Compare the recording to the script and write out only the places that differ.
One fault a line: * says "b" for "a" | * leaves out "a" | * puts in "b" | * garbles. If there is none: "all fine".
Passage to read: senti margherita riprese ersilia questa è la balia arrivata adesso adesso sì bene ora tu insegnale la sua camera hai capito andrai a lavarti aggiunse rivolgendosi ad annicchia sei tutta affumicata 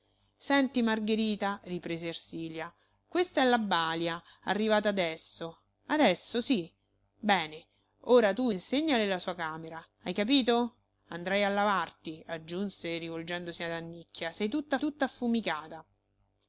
* puts in "tutta"